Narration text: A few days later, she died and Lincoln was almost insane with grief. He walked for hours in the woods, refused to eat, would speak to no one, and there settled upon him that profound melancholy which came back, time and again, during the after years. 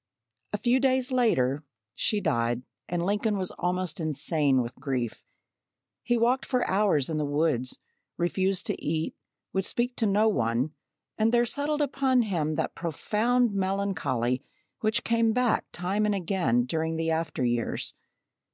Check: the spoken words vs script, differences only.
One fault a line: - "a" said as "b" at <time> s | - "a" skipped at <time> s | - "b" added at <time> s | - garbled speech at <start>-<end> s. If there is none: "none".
none